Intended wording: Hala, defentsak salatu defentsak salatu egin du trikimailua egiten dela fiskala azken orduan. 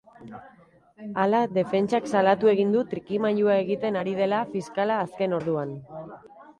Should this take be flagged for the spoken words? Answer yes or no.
yes